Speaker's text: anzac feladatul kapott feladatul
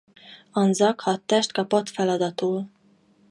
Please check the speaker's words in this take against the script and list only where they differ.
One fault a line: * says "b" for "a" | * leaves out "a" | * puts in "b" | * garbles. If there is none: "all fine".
* says "hadtest" for "feladatul"